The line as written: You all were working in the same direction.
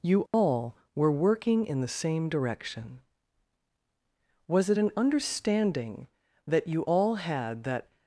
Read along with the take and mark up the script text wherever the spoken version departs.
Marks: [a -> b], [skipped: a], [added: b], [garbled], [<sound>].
You all [dropout] were working in the same direction. [added: Was it an understanding that you all had that]